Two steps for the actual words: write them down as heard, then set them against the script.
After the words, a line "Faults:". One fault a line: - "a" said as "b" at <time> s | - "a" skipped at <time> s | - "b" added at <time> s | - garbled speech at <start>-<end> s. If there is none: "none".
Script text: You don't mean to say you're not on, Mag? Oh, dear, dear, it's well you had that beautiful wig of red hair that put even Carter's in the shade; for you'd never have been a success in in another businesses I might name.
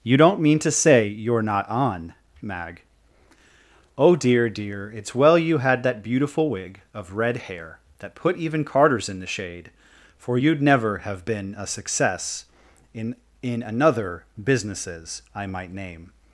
You don't mean to say you're not on, Mag? Oh, dear, dear, it's well you had that beautiful wig of red hair that put even Carter's in the shade; for you'd never have been a success in in another businesses I might name.
Faults:
none